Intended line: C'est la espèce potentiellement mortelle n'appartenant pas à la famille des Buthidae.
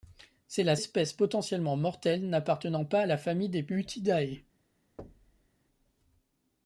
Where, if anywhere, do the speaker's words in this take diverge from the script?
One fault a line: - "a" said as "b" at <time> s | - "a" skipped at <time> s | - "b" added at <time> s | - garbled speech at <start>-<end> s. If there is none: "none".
none